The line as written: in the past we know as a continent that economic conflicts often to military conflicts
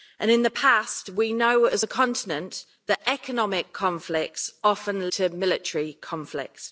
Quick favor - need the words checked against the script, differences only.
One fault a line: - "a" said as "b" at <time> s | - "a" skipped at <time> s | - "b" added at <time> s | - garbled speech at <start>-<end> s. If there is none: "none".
none